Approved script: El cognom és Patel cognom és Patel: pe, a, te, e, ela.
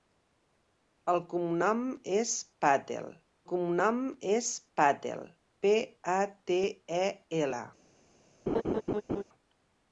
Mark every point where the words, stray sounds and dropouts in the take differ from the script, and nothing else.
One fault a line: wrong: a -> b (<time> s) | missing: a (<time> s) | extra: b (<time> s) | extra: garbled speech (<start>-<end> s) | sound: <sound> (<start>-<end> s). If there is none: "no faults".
sound: laugh (8.5-9.2 s)